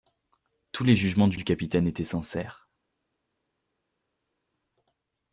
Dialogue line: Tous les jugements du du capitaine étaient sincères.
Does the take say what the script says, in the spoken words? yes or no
yes